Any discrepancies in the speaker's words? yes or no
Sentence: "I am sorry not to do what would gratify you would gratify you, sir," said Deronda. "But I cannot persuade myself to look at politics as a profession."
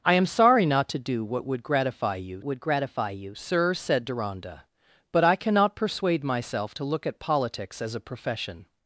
no